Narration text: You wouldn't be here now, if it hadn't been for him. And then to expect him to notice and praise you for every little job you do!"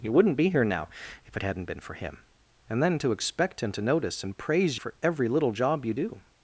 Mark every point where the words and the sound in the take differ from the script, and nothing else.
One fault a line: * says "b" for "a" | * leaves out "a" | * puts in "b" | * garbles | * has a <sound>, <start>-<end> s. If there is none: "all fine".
* leaves out "you"